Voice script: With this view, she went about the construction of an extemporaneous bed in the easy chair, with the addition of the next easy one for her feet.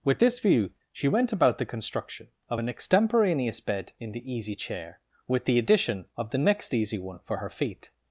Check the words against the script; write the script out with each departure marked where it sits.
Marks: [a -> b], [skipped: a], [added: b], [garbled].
With this view, she went about the construction of an extemporaneous bed in the easy chair, with the addition of the next easy one for her feet.